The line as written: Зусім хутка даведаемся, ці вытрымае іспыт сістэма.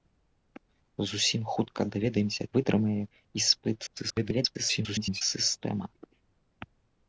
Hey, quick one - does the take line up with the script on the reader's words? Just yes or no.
no